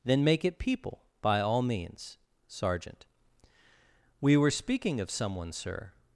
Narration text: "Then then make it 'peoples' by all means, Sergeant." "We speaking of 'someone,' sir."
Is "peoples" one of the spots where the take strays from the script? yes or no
yes